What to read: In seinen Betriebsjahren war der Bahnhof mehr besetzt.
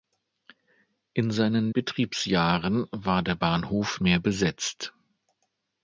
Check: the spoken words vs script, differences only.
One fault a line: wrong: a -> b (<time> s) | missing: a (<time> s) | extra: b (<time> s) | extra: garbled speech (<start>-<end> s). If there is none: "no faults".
no faults